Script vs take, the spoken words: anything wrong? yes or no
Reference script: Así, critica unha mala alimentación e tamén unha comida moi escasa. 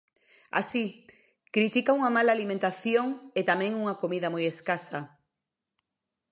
no